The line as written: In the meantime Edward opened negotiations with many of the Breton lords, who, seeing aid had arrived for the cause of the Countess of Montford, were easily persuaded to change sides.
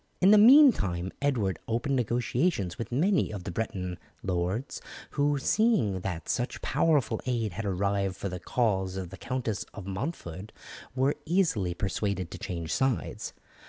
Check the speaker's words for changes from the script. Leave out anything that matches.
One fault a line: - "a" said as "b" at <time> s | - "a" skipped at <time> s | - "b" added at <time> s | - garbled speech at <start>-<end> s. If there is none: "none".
- "that such powerful" added at 6.0 s